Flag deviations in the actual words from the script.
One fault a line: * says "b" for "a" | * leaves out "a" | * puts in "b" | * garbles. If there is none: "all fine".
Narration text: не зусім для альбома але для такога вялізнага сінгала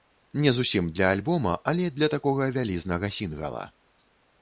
all fine